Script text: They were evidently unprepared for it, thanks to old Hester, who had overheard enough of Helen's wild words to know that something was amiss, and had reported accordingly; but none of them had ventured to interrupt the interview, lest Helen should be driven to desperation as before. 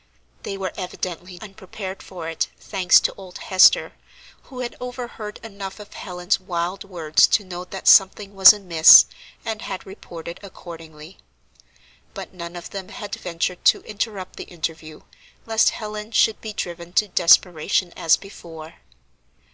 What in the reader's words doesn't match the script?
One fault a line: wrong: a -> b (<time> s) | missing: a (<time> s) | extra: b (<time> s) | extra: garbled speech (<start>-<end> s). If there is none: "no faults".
no faults